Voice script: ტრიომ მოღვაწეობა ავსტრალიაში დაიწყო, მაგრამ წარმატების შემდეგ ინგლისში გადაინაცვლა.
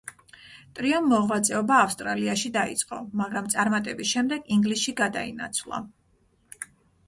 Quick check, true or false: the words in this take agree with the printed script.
true